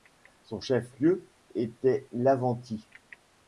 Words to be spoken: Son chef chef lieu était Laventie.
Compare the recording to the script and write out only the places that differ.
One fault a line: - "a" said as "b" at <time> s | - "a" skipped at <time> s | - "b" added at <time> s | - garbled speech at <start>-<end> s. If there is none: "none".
- "chef" skipped at 1.0 s